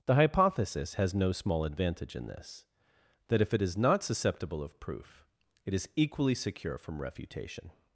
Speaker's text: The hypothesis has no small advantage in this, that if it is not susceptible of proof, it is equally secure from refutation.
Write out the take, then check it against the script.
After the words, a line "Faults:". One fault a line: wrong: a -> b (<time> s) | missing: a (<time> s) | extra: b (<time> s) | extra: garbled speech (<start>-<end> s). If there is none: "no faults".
The hypothesis has no small advantage in this, that if it is not susceptible of proof, it is equally secure from refutation.
Faults:
no faults